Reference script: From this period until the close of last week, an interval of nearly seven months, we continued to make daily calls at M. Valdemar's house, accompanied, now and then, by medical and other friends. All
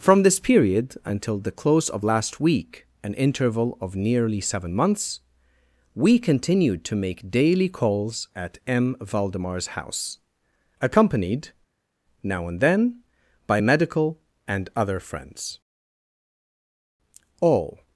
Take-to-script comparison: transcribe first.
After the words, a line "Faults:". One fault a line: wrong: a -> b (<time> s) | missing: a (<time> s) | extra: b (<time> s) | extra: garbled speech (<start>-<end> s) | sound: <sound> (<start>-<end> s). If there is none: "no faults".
From this period until the close of last week, an interval of nearly seven months, we continued to make daily calls at M. Valdemar's house, accompanied, now and then, by medical and other friends. All
Faults:
no faults